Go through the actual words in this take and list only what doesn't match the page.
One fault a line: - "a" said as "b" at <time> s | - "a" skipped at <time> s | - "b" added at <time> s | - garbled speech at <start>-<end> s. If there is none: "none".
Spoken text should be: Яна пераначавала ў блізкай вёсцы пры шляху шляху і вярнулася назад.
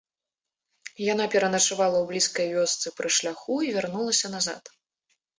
- "шляху" skipped at 3.6 s